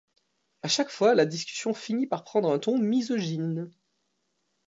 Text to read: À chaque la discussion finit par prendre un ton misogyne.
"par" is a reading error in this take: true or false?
false